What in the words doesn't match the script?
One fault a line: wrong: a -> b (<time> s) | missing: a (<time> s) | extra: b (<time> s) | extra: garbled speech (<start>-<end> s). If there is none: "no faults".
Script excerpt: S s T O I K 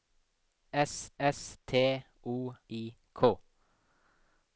no faults